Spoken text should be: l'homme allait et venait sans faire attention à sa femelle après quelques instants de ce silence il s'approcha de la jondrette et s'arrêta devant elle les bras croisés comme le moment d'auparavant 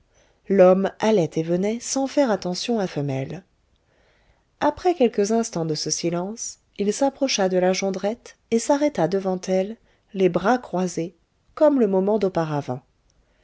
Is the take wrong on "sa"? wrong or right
wrong